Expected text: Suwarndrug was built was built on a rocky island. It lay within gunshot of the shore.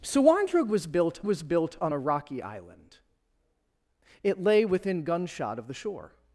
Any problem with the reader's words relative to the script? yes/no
no